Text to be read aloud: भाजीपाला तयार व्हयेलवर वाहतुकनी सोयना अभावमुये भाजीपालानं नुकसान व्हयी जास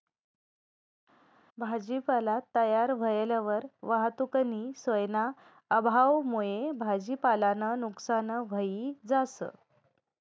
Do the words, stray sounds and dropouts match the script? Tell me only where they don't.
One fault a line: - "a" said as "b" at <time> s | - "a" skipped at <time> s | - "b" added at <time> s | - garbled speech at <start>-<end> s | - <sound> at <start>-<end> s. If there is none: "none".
none